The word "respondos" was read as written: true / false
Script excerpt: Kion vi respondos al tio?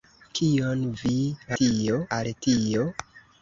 false